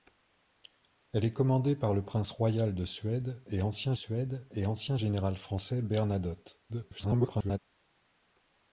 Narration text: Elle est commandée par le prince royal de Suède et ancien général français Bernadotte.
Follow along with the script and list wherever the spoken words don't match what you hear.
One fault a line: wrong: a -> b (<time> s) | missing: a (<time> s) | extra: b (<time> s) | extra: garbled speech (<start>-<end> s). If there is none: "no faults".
extra: Suède et ancien (3.9 s)
extra: garbled speech (6.7-7.6 s)